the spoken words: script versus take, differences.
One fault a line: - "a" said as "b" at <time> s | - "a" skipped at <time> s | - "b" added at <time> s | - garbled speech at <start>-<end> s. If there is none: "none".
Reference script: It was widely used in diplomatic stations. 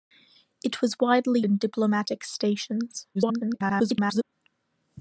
- "used" skipped at 1.4 s
- garbled speech at 3.1-4.2 s